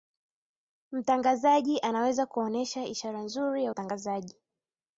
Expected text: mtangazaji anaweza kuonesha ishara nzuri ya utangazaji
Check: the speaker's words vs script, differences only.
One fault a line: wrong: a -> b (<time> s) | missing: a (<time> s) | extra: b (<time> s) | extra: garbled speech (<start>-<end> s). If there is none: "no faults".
no faults